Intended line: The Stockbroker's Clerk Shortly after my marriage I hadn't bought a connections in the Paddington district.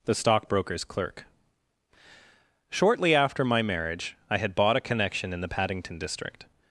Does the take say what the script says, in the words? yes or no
no